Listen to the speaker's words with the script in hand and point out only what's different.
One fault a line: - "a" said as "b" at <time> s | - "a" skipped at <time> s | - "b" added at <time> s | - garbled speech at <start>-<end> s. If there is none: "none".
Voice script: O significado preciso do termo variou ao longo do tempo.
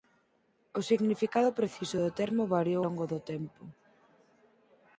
- "ao" skipped at 2.8 s